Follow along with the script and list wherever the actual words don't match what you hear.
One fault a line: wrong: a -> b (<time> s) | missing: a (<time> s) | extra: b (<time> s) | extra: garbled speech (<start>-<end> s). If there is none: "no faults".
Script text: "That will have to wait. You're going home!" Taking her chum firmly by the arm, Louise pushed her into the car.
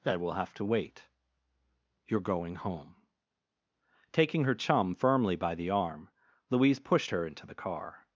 no faults